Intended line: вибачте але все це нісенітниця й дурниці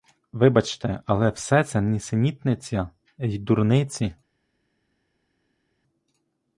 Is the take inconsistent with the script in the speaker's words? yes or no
no